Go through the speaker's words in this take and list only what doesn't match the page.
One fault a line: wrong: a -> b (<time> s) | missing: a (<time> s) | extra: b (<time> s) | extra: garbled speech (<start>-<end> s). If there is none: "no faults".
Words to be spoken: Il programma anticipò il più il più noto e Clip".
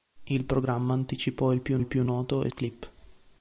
no faults